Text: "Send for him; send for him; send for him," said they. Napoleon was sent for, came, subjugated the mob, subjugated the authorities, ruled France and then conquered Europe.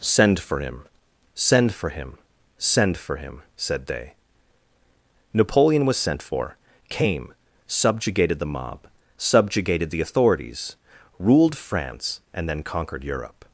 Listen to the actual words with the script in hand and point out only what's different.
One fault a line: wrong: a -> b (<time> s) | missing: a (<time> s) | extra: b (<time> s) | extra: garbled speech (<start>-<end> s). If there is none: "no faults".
no faults